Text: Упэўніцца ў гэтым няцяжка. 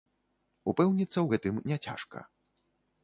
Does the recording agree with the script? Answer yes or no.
yes